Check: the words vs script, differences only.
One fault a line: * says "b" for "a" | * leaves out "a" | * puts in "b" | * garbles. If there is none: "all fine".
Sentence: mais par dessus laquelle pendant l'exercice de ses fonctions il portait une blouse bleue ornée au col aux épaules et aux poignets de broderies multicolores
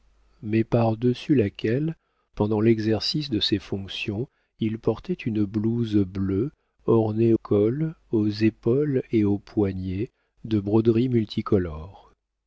* leaves out "au"